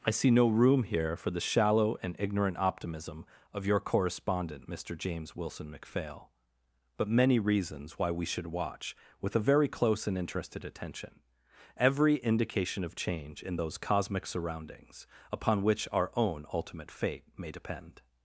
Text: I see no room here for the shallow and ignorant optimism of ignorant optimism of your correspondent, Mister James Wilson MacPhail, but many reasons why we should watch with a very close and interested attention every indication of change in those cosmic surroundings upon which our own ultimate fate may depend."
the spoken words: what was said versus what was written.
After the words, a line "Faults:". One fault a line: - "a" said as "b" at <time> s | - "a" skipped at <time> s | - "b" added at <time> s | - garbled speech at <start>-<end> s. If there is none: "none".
I see no room here for the shallow and ignorant optimism of your correspondent, Mister James Wilson MacPhail, but many reasons why we should watch with a very close and interested attention every indication of change in those cosmic surroundings upon which our own ultimate fate may depend."
Faults:
- "ignorant optimism of" skipped at 3.7 s